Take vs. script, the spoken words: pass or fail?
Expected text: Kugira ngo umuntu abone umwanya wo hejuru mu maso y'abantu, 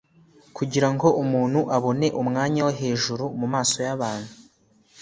pass